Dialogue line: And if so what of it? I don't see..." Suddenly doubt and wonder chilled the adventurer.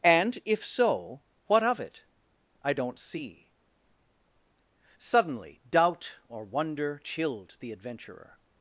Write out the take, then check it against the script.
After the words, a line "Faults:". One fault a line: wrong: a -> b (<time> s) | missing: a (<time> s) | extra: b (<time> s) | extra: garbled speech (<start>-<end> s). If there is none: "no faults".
And if so what of it? I don't see..." Suddenly doubt or wonder chilled the adventurer.
Faults:
wrong: and -> or (6.3 s)